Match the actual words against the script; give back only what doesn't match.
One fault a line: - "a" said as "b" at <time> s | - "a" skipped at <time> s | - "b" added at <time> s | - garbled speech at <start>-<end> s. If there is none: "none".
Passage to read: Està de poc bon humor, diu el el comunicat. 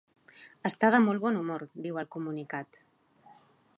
- "poc" said as "molt" at 1.0 s
- "el" skipped at 2.1 s